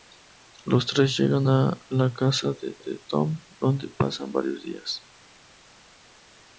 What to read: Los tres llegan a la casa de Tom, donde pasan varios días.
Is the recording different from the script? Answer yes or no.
yes